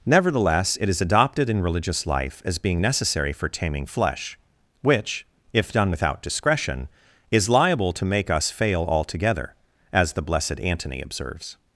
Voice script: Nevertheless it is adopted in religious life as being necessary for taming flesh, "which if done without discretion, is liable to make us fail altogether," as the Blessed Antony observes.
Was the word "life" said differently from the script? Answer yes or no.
no